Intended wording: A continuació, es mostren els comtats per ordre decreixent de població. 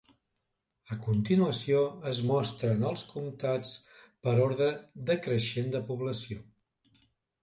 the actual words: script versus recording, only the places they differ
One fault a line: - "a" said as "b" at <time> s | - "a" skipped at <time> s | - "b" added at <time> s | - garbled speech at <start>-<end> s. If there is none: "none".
none